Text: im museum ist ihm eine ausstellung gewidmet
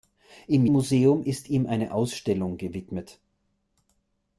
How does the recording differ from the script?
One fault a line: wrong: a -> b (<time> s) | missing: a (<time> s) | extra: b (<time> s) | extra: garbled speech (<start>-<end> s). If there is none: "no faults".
no faults